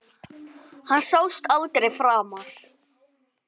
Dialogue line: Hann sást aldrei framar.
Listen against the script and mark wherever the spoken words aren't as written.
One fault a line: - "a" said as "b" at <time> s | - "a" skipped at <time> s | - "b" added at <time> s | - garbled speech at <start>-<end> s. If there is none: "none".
none